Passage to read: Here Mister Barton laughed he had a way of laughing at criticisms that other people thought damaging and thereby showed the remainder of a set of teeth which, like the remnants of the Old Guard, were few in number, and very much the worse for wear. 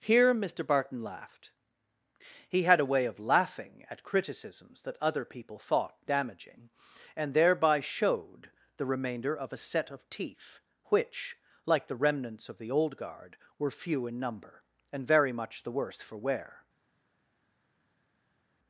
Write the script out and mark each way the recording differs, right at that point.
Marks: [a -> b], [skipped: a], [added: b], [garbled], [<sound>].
Here Mister Barton laughed he had a way of laughing at criticisms that other people thought damaging and thereby showed the remainder of a set of teeth which, like the remnants of the Old Guard, were few in number, and very much the worse for wear.